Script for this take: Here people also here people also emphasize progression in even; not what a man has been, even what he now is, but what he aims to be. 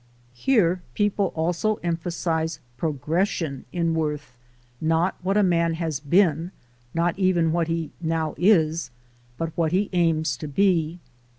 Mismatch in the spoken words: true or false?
true